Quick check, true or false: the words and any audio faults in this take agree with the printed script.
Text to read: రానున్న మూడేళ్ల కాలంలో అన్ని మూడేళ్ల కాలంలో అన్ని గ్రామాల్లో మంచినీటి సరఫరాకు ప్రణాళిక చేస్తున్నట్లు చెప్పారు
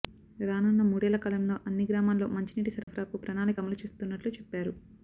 false